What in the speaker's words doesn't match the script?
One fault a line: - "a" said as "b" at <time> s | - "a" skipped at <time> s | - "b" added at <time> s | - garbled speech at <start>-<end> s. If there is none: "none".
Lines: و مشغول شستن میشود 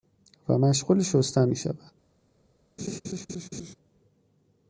none